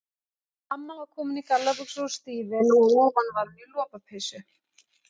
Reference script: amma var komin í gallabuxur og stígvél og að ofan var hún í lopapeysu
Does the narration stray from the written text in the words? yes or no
no